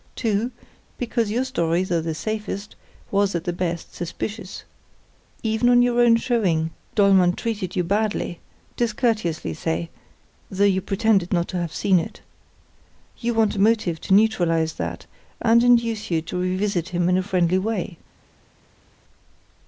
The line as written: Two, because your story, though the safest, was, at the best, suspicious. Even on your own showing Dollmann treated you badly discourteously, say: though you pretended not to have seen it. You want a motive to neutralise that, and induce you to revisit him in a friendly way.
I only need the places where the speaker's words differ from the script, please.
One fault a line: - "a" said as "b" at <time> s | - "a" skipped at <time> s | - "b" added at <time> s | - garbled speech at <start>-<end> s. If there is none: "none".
none